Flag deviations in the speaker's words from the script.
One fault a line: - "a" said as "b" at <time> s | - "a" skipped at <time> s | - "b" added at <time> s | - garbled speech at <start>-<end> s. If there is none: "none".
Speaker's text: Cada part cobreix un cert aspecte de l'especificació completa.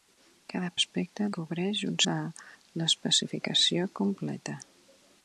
- "part" said as "aspecte" at 0.8 s
- "cert aspecte" skipped at 2.0 s